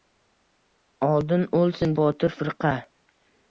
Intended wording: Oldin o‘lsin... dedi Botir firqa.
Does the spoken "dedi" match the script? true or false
false